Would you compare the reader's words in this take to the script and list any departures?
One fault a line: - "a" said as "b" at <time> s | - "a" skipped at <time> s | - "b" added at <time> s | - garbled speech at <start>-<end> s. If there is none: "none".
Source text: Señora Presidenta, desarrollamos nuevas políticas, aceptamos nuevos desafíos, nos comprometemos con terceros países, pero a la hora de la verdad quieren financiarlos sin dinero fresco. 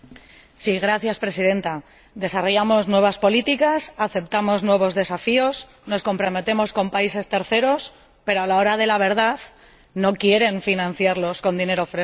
- "no" added at 9.9 s
- "sin" said as "con" at 11.4 s